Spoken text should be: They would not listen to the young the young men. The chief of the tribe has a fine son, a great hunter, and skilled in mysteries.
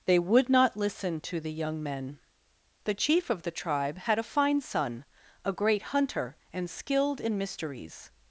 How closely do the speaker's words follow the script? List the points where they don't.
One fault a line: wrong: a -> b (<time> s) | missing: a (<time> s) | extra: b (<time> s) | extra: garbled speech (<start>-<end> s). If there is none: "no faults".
missing: the young (1.8 s)
wrong: has -> had (4.0 s)